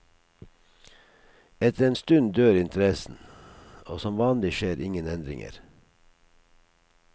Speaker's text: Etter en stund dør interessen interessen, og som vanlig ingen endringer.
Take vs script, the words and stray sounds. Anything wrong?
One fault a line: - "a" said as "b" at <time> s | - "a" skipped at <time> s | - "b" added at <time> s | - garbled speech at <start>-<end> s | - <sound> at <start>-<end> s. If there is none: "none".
- "interessen" skipped at 3.2 s
- "skjer" added at 4.6 s